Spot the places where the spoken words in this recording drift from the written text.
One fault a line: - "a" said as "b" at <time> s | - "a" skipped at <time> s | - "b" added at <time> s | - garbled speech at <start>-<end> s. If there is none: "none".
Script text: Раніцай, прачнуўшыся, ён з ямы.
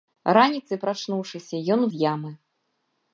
none